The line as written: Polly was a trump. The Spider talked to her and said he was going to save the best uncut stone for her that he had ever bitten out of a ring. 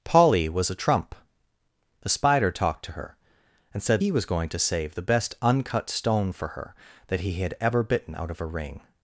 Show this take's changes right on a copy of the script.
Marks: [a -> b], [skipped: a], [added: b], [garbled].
Polly was a trump. The Spider talked to her and said he was going to save the best uncut stone for her that he had ever bitten out of a ring.